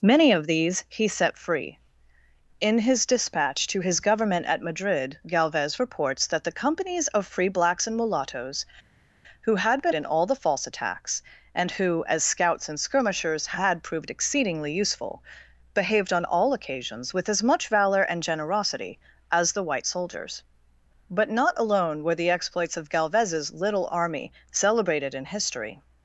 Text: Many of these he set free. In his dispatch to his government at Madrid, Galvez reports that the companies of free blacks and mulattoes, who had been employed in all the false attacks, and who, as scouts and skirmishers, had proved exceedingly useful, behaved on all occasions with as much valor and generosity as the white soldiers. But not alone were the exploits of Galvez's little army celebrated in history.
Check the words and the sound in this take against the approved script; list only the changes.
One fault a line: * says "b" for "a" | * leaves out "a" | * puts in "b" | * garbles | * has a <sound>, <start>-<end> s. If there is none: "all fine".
* leaves out "employed"